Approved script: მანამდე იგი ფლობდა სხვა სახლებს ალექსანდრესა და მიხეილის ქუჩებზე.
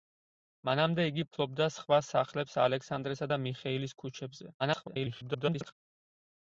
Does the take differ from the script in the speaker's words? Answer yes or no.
yes